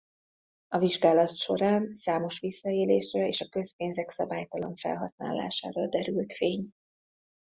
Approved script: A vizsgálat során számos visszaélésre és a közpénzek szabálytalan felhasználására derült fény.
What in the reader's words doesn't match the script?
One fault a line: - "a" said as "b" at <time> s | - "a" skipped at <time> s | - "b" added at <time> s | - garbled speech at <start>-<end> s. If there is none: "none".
none